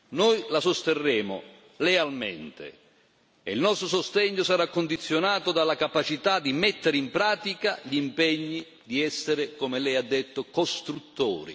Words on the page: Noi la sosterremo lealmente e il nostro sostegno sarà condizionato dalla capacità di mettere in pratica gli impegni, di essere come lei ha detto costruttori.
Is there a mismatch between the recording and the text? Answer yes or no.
no